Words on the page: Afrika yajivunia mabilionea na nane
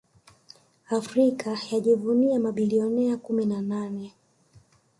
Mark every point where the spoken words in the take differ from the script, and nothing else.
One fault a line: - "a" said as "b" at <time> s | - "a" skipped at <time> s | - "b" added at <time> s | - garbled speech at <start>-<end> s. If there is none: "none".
- "kumi" added at 3.2 s